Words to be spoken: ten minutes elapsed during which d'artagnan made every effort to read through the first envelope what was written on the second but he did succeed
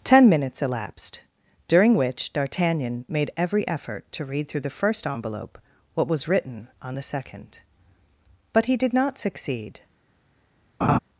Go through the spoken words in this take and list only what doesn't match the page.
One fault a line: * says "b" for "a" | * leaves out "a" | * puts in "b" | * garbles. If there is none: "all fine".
* puts in "not"